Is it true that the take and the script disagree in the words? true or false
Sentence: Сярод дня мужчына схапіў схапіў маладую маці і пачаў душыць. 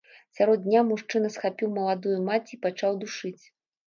true